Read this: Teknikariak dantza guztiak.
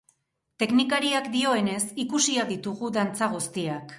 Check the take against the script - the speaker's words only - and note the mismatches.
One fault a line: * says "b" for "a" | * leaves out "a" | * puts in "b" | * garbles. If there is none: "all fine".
* puts in "dioenez ikusiak ditugu"